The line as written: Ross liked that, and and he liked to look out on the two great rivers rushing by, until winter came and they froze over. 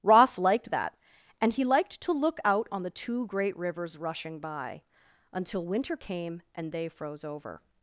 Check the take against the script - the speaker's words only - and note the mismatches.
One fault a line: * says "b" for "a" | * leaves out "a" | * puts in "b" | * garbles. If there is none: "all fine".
* leaves out "and"